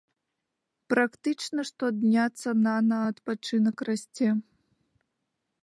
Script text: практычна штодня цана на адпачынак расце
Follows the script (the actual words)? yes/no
yes